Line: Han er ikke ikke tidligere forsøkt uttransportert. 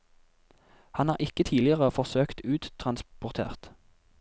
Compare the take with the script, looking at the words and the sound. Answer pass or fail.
fail